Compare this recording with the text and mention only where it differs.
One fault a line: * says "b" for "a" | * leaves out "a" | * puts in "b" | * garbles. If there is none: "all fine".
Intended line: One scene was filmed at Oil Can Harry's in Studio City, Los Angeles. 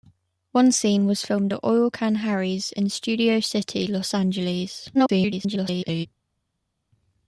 * garbles